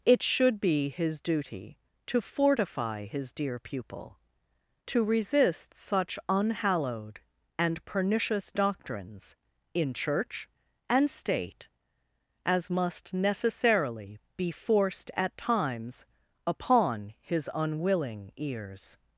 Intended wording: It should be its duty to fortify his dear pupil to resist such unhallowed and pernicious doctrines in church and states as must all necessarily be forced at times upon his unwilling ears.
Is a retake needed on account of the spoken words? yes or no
yes